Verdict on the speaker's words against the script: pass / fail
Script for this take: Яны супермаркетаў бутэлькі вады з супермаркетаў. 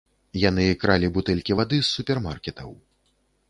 fail